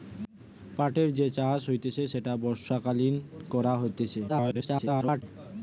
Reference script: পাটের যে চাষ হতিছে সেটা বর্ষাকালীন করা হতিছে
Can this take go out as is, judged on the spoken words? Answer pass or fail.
fail